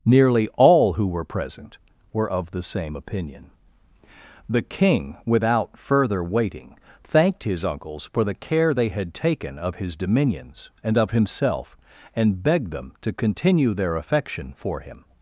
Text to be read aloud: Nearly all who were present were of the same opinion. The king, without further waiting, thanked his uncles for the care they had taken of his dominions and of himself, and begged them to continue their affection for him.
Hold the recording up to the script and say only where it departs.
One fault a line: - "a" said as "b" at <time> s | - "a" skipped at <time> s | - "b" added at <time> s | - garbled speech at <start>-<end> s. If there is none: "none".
none